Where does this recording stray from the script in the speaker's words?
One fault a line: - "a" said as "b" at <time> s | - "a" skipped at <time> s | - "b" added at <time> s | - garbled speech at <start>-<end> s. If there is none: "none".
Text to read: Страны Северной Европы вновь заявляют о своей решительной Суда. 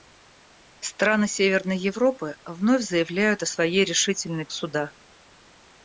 none